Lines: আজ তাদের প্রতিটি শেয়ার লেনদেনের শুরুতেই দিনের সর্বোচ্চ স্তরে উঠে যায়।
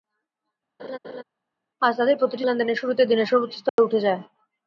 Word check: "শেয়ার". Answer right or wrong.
wrong